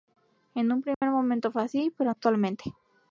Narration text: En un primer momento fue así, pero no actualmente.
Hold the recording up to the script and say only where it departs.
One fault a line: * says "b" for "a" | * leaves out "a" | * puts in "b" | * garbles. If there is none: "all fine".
* leaves out "no"